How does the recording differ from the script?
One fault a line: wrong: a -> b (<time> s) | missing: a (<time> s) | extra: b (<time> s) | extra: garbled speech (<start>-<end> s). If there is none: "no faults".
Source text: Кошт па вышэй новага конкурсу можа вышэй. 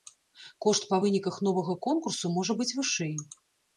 wrong: вышэй -> выніках (1.0 s)
extra: быць (2.6 s)